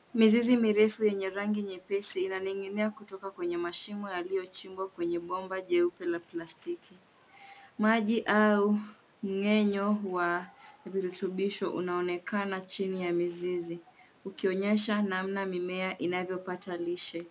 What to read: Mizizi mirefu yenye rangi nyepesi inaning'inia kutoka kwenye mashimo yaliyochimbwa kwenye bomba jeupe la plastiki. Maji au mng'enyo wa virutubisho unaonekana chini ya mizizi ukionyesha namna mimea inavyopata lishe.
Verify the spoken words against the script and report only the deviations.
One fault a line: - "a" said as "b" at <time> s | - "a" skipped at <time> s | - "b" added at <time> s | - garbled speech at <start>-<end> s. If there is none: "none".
none